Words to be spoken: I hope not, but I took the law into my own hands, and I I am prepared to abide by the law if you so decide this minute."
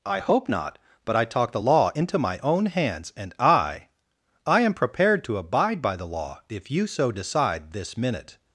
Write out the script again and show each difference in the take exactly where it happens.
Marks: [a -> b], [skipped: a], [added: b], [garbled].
I hope not, but I [took -> talk] the law into my own hands, and I I am prepared to abide by the law if you so decide this minute."